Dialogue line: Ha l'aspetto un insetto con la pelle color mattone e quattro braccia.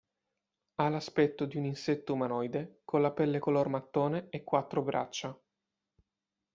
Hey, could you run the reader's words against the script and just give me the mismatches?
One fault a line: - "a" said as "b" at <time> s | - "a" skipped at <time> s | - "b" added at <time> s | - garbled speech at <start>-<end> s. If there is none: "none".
- "di" added at 1.4 s
- "umanoide" added at 2.1 s